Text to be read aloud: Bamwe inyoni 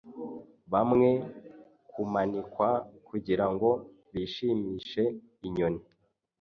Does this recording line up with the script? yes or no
no